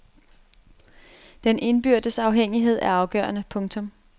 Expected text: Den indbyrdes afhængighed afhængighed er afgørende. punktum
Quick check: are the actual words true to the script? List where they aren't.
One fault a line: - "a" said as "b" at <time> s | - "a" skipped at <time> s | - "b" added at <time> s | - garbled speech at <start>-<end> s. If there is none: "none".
- "afhængighed" skipped at 2.8 s